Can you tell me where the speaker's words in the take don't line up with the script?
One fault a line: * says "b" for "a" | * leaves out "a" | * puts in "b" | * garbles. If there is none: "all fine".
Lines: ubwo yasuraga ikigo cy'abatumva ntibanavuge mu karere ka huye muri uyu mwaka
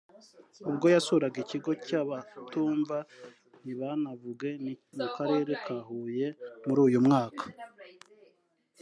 all fine